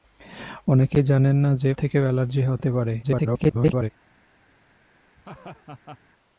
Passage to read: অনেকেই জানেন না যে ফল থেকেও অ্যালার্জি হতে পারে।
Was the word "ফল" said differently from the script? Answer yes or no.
yes